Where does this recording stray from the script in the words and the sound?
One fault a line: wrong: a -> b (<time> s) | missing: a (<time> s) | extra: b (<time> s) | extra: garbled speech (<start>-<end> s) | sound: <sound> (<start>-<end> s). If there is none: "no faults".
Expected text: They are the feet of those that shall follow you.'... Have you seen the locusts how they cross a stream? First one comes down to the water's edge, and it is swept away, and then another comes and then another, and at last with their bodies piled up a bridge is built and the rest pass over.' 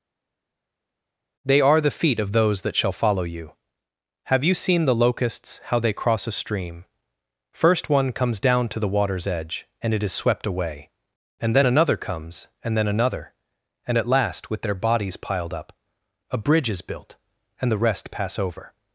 no faults